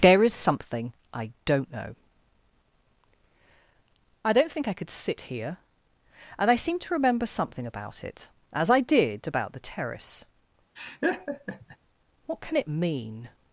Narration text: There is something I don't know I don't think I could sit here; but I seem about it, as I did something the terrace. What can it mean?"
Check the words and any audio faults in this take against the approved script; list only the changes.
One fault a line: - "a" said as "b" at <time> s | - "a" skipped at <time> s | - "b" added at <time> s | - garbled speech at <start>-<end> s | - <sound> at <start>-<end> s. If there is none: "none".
- "but" said as "and" at 6.4 s
- "to remember something" added at 6.8 s
- "something" said as "about" at 9.3 s
- laugh at 10.8-11.8 s